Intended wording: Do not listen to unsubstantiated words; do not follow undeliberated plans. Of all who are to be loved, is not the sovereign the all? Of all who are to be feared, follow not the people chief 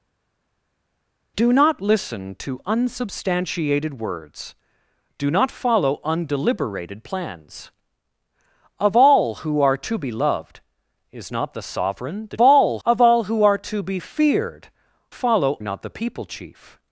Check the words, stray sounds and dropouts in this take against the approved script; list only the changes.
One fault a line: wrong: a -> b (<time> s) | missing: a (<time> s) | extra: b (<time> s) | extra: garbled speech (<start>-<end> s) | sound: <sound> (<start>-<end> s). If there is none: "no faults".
no faults